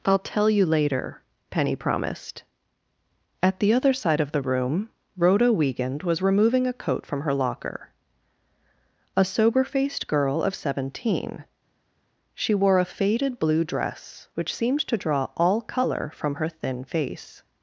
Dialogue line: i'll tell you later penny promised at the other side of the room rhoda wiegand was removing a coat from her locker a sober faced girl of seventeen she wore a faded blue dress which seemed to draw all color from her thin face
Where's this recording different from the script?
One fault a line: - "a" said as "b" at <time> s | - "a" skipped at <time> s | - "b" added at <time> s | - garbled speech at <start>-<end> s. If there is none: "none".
none